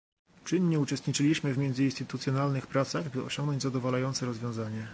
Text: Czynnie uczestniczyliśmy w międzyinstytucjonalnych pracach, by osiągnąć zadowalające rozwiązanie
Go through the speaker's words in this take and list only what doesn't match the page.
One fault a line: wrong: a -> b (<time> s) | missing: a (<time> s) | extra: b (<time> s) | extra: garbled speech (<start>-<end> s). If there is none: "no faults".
no faults